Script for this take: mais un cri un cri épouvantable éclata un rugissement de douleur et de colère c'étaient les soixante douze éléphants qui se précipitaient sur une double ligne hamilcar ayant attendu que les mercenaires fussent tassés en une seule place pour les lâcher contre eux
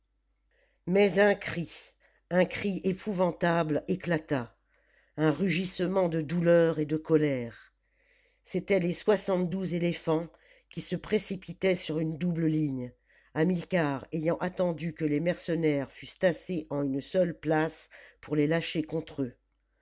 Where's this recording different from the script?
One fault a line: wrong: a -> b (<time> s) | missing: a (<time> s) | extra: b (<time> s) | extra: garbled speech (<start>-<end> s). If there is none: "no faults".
no faults